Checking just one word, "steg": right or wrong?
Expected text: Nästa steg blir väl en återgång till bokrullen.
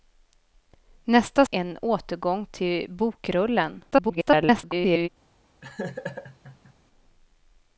wrong